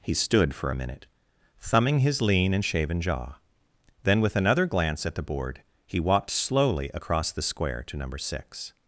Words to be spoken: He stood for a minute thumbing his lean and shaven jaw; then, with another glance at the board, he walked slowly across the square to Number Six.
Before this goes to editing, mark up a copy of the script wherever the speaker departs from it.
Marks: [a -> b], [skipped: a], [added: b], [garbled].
He stood for a minute thumbing his lean and shaven jaw; then, with another glance at the board, he walked slowly across the square to Number Six.